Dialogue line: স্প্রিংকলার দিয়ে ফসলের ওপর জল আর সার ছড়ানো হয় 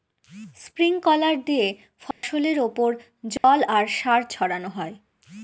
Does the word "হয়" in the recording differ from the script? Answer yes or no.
no